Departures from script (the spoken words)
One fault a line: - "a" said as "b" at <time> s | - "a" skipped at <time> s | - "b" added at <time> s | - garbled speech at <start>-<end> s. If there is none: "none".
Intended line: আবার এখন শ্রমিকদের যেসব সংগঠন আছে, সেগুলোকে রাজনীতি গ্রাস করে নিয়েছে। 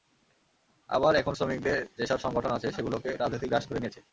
none